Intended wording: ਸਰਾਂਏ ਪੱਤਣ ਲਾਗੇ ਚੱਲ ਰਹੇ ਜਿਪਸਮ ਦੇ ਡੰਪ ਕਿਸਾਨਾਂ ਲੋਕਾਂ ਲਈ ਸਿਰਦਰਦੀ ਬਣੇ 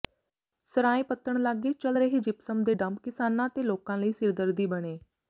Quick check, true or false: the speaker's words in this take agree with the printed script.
false